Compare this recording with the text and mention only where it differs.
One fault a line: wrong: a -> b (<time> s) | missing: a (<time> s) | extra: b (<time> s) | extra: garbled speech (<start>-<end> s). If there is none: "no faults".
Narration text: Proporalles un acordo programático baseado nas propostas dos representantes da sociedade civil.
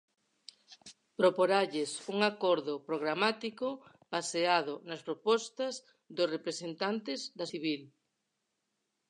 missing: sociedade (7.4 s)